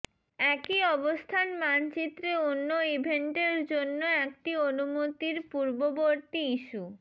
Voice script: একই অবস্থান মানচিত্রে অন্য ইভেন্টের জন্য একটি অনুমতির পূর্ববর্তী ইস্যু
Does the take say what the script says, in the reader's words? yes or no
yes